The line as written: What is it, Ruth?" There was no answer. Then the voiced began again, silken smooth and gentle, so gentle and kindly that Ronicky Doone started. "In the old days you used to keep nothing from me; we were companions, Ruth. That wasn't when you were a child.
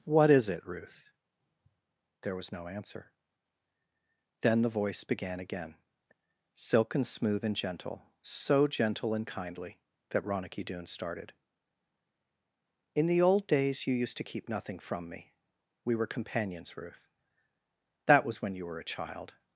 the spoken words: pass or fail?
fail